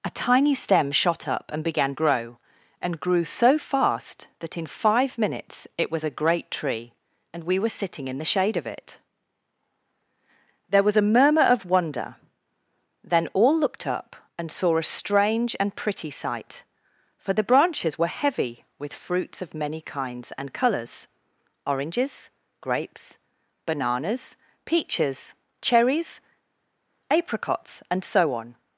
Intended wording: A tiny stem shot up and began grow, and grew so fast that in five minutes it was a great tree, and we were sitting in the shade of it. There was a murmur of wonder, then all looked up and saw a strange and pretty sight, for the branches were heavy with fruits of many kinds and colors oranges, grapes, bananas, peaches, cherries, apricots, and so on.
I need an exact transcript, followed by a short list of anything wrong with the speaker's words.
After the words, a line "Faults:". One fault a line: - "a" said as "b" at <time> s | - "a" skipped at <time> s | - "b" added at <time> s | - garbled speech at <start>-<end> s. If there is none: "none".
A tiny stem shot up and began grow, and grew so fast that in five minutes it was a great tree, and we were sitting in the shade of it. There was a murmur of wonder, then all looked up and saw a strange and pretty sight, for the branches were heavy with fruits of many kinds and colors oranges, grapes, bananas, peaches, cherries, apricots, and so on.
Faults:
none